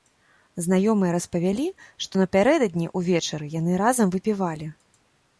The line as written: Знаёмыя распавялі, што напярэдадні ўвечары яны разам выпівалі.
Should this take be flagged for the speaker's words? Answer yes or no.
no